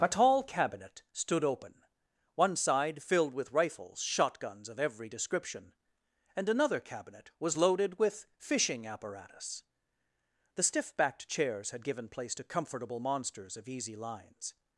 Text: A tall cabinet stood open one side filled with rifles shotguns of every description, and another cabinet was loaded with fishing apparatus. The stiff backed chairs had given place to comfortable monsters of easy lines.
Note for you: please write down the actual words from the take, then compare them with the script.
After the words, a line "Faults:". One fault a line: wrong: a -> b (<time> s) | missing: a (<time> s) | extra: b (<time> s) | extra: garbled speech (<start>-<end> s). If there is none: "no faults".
A tall cabinet stood open one side filled with rifles shotguns of every description, and another cabinet was loaded with fishing apparatus. The stiff backed chairs had given place to comfortable monsters of easy lines.
Faults:
no faults